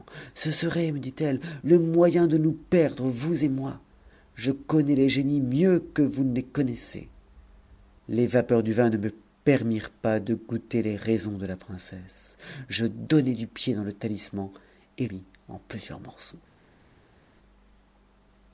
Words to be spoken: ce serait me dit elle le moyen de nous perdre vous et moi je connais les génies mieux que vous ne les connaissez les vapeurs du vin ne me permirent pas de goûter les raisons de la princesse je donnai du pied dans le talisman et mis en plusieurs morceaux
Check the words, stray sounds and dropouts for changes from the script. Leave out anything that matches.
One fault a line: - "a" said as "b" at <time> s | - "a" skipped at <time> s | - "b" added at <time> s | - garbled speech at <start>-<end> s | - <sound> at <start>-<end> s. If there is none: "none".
none